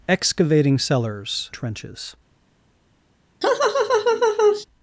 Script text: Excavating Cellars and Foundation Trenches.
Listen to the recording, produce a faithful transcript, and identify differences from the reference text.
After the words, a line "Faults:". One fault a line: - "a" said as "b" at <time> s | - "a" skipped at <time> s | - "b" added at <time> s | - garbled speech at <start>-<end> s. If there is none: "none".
Excavating Cellars Trenches.
Faults:
- "and Foundation" skipped at 1.5 s